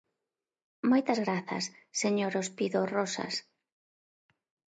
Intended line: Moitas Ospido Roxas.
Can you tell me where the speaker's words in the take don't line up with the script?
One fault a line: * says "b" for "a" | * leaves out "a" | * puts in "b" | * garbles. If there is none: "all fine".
* puts in "grazas señor"